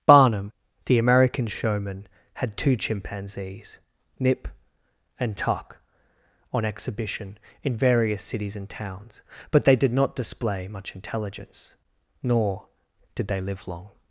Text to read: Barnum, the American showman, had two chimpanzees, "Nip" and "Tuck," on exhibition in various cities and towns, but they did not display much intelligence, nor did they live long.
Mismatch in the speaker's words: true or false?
false